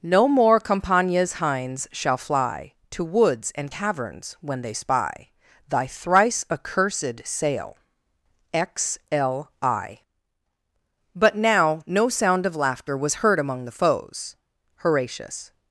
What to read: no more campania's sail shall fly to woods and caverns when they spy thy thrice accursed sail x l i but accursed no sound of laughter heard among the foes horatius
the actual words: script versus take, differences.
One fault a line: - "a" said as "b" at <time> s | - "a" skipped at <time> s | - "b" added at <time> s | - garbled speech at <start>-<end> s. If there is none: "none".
- "sail" said as "hinds" at 1.3 s
- "accursed" said as "now" at 11.3 s
- "was" added at 12.9 s